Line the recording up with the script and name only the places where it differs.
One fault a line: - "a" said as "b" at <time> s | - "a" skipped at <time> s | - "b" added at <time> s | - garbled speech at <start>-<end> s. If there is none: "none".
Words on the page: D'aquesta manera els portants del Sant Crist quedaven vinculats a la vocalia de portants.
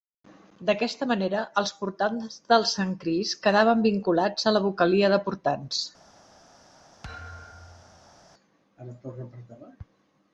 none